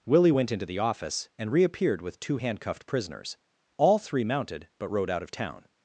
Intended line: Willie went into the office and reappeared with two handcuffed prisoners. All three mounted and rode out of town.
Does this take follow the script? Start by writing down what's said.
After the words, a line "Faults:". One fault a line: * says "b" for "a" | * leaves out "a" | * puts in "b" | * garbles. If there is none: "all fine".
Willie went into the office and reappeared with two handcuffed prisoners. All three mounted but rode out of town.
Faults:
* says "but" for "and"